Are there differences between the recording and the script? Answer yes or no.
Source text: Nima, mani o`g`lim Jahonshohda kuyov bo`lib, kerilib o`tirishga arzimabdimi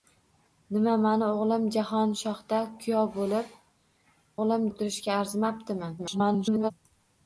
yes